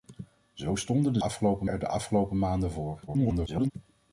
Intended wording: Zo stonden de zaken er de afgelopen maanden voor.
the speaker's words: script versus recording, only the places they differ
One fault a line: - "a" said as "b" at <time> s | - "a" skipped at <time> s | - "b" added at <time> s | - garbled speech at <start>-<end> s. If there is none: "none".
- "zaken" said as "afgelopen" at 1.2 s
- garbled speech at 3.1-3.7 s